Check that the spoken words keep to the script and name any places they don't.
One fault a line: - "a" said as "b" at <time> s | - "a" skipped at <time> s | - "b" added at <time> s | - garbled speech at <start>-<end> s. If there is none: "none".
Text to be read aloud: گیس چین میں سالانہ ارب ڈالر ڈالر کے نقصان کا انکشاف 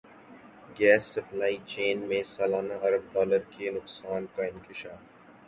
- "سپلائی" added at 1.1 s
- "ڈالر" skipped at 3.4 s